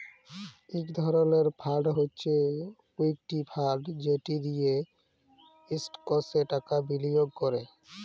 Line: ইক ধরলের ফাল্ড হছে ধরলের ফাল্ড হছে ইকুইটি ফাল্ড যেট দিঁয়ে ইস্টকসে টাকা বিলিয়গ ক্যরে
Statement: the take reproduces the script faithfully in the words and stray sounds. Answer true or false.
false